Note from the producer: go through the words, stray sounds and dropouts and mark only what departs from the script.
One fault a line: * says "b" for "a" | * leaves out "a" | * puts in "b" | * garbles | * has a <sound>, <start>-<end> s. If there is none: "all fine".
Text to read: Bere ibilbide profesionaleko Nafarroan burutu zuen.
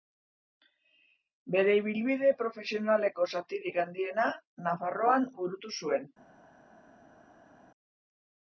* puts in "zatirik handiena"